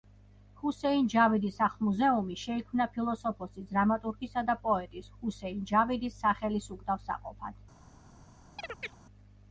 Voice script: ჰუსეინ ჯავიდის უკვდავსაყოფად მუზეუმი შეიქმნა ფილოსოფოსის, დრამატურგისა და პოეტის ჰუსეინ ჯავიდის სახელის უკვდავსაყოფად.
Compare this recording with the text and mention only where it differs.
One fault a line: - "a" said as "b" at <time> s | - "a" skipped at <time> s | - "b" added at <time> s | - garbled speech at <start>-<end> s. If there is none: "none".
- "უკვდავსაყოფად" said as "სახლ" at 1.6 s